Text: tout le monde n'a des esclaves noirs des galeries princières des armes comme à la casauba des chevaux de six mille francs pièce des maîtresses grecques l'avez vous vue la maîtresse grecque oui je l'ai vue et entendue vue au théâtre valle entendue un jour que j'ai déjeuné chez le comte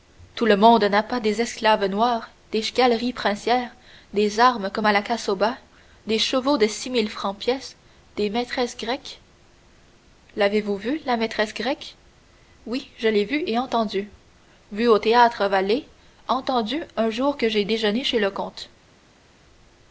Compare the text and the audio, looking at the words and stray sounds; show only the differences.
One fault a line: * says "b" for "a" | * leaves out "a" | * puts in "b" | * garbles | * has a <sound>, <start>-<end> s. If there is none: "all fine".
* puts in "pas"